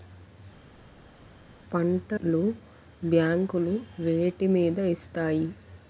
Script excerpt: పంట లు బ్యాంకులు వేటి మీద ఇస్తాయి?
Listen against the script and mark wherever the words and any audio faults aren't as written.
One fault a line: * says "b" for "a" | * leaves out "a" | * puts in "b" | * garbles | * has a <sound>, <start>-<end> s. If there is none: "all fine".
all fine